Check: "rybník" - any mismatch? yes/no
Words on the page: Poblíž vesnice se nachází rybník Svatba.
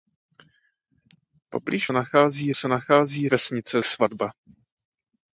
yes